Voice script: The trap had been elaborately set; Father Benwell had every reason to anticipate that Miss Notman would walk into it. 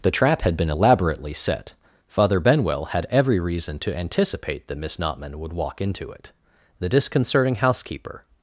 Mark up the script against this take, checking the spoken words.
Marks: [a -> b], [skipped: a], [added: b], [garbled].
The trap had been elaborately set; Father Benwell had every reason to anticipate that Miss Notman would walk into it. [added: The disconcerting housekeeper]